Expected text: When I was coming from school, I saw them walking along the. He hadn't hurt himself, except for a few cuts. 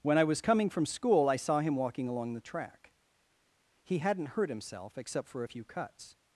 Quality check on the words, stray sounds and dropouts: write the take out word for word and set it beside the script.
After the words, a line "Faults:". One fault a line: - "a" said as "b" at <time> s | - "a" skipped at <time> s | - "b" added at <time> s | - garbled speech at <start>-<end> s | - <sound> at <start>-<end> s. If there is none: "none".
When I was coming from school, I saw him walking along the track. He hadn't hurt himself, except for a few cuts.
Faults:
- "them" said as "him" at 1.6 s
- "track" added at 2.4 s